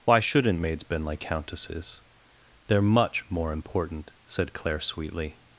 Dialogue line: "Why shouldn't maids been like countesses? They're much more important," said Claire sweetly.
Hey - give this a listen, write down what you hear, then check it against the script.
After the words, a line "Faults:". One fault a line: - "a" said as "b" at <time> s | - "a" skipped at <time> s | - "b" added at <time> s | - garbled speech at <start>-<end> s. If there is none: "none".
"Why shouldn't maids been like countesses? They're much more important," said Claire sweetly.
Faults:
none